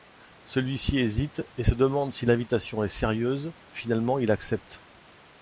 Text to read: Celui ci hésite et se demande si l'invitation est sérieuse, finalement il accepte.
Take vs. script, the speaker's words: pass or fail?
pass